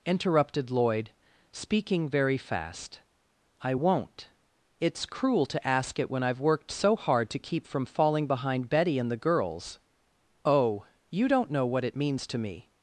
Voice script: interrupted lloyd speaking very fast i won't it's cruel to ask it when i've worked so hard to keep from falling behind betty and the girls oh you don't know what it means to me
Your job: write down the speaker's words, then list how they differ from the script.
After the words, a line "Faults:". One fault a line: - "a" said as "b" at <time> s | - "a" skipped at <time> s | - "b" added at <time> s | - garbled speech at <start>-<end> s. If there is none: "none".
interrupted lloyd speaking very fast i won't it's cruel to ask it when i've worked so hard to keep from falling behind betty and the girls oh you don't know what it means to me
Faults:
none